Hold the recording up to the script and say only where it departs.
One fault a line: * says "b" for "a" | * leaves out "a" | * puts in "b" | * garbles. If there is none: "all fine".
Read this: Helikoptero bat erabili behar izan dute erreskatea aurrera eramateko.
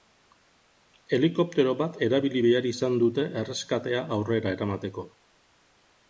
all fine